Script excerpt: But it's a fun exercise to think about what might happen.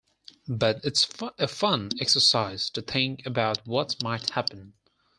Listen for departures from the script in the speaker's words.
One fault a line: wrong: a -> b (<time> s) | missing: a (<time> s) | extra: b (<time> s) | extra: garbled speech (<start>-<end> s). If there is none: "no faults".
no faults